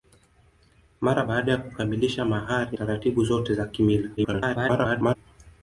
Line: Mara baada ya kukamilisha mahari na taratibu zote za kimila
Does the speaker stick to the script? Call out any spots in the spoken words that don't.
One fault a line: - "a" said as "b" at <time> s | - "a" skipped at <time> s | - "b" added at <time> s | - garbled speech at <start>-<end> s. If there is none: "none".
- "na" skipped at 2.8 s
- garbled speech at 4.2-5.2 s